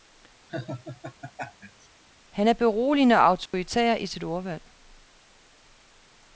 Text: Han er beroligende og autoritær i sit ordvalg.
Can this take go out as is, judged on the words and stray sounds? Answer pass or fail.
fail